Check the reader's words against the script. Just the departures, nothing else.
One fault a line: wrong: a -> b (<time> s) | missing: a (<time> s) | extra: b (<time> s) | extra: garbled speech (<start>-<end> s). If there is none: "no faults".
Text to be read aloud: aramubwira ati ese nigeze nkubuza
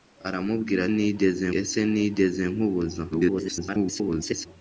wrong: ati -> nigeze (0.9 s)
extra: garbled speech (3.1-4.5 s)